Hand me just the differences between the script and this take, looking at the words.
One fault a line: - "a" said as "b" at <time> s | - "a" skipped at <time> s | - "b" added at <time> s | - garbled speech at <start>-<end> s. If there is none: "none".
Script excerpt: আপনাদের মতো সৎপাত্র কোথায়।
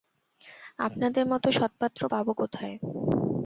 - "পাব" added at 2.1 s